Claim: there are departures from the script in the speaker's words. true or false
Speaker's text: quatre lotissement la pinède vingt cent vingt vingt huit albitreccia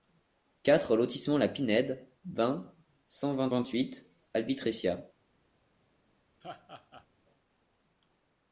false